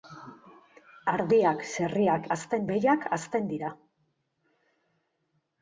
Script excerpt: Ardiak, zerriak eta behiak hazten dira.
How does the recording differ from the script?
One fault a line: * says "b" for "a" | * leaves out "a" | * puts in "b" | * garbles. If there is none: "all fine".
* says "hazten" for "eta"